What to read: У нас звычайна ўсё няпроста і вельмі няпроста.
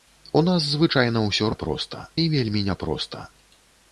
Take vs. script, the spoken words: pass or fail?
pass